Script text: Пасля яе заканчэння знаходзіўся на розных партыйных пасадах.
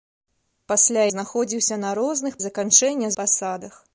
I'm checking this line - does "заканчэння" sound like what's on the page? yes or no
no